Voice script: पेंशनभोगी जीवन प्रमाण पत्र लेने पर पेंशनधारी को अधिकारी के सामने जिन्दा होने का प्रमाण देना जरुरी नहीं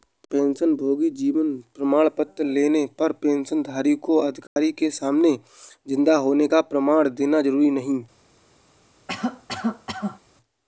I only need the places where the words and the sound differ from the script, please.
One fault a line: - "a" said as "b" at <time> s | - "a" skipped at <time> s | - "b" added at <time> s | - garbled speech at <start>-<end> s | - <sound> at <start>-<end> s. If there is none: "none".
- dropout at 4.5-4.6 s
- cough at 9.1-10.2 s